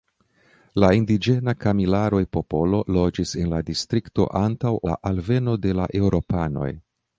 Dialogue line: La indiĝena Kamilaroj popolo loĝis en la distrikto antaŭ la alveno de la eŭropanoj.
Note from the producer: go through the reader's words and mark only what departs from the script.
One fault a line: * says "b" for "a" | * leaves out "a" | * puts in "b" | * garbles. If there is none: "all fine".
all fine